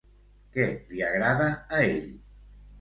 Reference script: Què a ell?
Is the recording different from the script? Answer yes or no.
yes